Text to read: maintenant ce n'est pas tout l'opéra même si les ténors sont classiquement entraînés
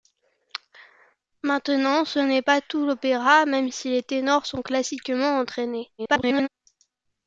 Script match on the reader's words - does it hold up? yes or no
no